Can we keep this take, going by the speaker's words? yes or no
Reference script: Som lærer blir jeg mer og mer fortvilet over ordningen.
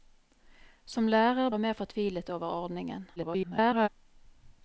no